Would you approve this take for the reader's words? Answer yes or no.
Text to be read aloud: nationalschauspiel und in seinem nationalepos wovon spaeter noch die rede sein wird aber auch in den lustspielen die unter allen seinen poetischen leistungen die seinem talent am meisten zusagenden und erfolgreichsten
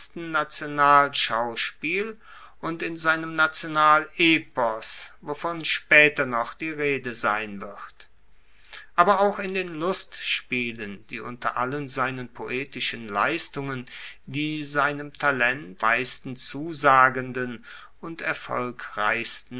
no